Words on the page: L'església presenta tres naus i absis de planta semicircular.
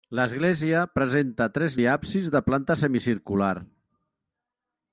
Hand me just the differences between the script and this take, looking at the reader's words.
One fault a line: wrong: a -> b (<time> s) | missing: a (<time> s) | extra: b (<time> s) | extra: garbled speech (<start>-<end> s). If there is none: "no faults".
missing: naus (1.8 s)